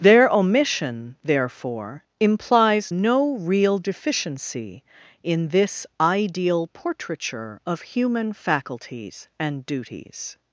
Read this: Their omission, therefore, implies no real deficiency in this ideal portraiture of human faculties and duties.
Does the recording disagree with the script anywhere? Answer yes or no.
no